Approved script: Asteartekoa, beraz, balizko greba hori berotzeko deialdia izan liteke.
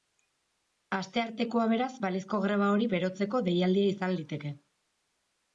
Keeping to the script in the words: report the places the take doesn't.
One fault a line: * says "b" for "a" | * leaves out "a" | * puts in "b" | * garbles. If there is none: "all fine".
all fine